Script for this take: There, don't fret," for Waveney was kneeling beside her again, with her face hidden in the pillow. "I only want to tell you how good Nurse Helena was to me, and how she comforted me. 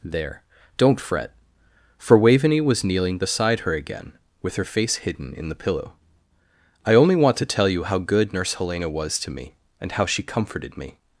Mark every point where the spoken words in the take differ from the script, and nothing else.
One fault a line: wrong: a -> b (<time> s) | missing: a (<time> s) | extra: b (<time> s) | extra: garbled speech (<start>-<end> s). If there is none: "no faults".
no faults